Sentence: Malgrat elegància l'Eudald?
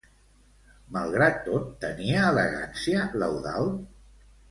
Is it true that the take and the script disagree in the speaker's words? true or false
true